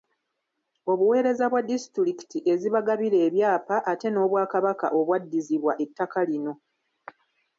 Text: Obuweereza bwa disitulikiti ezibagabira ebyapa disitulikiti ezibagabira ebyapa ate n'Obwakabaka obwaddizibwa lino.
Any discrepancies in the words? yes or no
yes